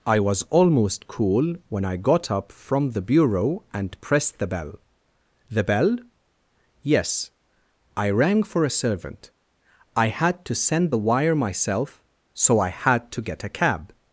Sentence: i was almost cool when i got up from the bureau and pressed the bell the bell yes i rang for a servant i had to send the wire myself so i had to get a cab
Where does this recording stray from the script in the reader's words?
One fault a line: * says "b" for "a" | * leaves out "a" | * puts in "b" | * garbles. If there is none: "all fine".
all fine